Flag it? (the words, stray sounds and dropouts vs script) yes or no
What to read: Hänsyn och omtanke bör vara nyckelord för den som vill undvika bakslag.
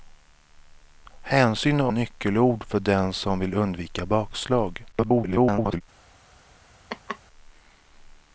yes